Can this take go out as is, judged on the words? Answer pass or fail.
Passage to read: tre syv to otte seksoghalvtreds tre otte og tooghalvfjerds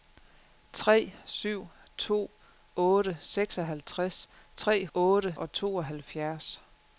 pass